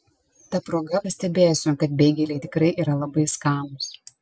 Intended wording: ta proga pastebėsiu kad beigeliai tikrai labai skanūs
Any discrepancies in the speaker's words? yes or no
yes